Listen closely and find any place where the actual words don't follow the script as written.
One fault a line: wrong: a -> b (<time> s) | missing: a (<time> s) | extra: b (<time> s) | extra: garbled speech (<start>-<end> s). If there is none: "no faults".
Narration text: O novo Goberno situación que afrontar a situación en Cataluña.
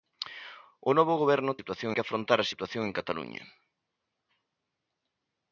no faults